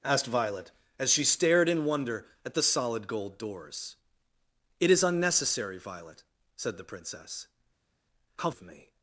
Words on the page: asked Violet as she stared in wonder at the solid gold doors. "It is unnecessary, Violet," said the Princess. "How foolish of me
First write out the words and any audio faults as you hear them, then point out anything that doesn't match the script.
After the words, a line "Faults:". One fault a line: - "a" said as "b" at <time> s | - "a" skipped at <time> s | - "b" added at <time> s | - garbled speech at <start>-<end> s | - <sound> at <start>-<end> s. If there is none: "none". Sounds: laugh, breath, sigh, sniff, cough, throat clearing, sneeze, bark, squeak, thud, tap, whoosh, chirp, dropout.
asked Violet as she stared in wonder at the solid gold doors. "It is unnecessary, Violet," said the Princess. "How of me
Faults:
- "foolish" skipped at 8.5 s